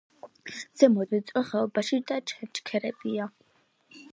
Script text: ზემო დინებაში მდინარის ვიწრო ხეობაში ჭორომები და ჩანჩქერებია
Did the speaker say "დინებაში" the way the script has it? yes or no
no